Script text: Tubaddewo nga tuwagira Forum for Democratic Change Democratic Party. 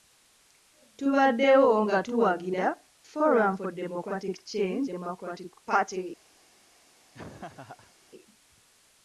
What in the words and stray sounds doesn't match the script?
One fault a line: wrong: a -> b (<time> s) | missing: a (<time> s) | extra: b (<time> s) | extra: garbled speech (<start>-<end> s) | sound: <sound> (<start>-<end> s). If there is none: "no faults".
sound: laugh (7.1-7.9 s)